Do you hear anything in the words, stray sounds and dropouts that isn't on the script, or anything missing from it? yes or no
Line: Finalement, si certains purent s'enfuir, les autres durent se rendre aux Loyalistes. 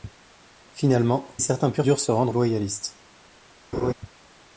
yes